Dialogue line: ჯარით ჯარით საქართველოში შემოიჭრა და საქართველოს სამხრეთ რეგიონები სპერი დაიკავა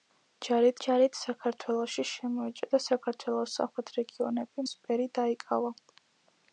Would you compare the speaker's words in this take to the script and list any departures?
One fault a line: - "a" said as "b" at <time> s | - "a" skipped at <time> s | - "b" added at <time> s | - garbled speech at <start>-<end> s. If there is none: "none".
none